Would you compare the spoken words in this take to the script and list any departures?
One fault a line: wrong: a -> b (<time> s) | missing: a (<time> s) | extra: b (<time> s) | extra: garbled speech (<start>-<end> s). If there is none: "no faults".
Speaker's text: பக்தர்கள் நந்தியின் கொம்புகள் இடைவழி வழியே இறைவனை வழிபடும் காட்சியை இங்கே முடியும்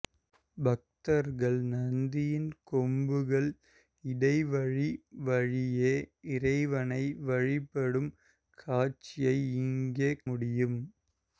no faults